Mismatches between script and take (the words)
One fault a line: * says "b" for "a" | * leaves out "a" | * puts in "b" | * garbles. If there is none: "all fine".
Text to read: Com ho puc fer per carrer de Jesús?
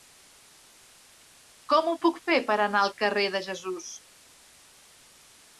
* puts in "anar al"